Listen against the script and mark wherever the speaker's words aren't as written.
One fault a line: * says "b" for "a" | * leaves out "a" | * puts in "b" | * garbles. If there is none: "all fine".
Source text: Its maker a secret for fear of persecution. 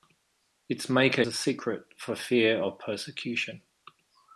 all fine